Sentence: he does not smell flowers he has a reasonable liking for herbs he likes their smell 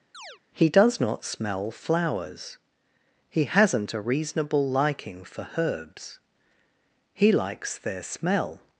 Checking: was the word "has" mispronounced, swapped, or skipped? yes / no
yes